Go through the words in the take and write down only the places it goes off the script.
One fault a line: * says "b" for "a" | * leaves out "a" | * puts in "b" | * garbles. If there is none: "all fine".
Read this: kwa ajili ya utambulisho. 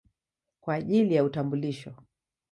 all fine